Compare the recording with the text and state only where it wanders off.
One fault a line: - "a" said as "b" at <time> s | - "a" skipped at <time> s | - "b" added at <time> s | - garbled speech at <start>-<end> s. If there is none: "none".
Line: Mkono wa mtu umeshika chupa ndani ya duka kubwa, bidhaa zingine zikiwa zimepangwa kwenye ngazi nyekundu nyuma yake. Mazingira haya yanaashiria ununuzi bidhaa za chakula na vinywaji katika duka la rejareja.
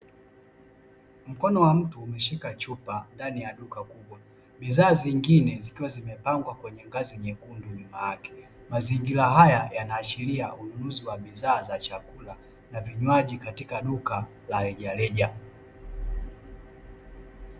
- "wa" added at 11.1 s